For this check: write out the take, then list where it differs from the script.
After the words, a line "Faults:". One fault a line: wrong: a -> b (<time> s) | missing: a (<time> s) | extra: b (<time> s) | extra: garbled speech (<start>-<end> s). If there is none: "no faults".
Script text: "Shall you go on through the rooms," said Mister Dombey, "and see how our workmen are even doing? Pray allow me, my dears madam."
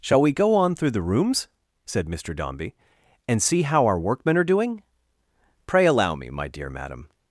"Shall we go on through the rooms," said Mister Dombey, "and see how our workmen are doing? Pray allow me, my dear madam."
Faults:
wrong: you -> we (0.2 s)
missing: even (4.4 s)
wrong: dears -> dear (6.5 s)